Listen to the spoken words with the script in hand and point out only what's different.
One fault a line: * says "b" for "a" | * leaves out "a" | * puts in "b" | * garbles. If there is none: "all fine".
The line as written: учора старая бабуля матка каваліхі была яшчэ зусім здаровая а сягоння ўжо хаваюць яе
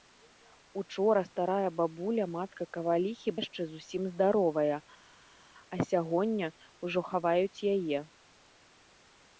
* leaves out "была"